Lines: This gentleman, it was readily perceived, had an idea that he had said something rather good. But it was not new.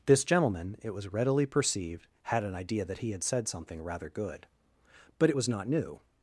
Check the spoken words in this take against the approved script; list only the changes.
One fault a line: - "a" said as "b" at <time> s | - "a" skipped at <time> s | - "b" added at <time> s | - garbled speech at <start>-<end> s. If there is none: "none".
none